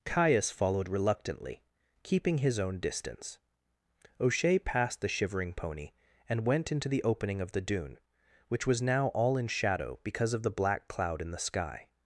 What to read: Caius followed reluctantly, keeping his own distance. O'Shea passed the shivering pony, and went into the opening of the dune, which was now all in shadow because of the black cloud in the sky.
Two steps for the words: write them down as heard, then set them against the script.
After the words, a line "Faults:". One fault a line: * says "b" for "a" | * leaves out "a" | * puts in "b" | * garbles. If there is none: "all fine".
Caius followed reluctantly, keeping his own distance. O'Shea passed the shivering pony, and went into the opening of the dune, which was now all in shadow because of the black cloud in the sky.
Faults:
all fine